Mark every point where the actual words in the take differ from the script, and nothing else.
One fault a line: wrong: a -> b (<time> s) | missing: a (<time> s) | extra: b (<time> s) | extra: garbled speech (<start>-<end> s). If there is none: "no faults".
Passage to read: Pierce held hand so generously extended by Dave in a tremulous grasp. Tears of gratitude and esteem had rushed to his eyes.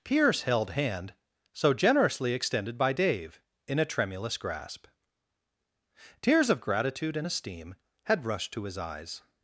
no faults